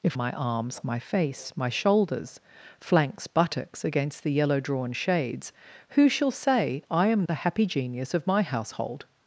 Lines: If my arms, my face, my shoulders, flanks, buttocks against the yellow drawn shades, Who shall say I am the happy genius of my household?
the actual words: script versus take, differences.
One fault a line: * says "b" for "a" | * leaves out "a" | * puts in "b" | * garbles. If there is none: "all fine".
all fine